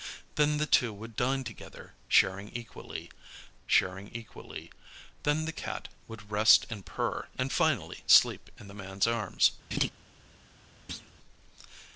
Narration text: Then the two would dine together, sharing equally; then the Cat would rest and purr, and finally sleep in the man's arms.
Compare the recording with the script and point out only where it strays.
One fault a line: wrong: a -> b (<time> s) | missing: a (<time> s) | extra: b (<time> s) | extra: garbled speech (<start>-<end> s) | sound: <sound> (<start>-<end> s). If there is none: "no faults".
extra: sharing equally (3.7 s)
sound: laugh (9.7-9.9 s)
sound: thud (10.9-11.1 s)